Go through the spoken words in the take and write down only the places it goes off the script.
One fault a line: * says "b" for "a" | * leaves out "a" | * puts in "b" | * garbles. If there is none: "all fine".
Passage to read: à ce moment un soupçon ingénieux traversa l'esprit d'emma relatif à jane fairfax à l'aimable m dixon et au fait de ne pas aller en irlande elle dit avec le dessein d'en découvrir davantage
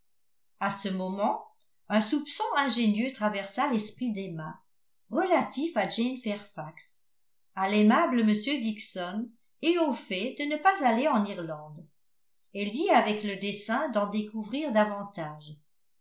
all fine